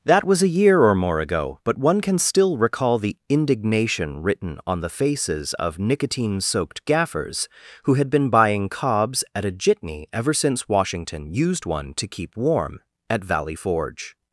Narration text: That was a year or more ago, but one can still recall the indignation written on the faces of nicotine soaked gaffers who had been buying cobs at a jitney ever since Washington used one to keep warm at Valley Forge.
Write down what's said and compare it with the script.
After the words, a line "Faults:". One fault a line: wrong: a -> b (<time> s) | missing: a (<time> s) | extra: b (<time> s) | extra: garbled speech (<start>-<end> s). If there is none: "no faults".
That was a year or more ago, but one can still recall the indignation written on the faces of nicotine soaked gaffers who had been buying cobs at a jitney ever since Washington used one to keep warm at Valley Forge.
Faults:
no faults